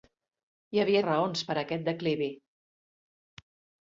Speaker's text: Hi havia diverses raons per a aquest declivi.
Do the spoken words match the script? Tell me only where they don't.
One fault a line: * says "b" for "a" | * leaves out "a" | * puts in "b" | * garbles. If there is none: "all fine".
* leaves out "diverses"